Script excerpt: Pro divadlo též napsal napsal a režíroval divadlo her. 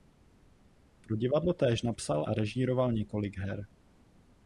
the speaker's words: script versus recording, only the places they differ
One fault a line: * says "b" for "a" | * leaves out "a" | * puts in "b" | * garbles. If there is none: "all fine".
* leaves out "napsal"
* says "několik" for "divadlo"